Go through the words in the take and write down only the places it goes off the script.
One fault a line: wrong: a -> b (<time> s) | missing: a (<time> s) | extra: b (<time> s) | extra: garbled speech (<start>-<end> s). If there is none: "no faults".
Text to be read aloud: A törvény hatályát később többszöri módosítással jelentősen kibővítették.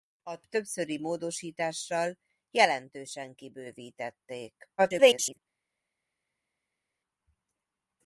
missing: törvény hatályát később (0.4 s)
extra: garbled speech (4.8-5.4 s)